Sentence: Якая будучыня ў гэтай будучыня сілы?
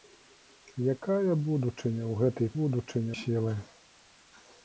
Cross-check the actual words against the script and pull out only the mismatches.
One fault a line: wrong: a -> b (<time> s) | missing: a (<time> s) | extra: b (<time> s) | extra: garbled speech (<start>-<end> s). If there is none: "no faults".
no faults